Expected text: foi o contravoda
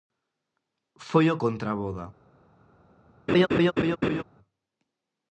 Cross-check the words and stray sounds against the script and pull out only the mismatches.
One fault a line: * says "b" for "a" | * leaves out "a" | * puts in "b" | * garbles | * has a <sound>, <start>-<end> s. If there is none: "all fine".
* has a laugh, 3.3-4.2 s